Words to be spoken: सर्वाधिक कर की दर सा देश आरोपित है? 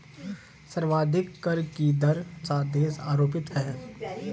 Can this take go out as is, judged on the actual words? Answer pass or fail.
pass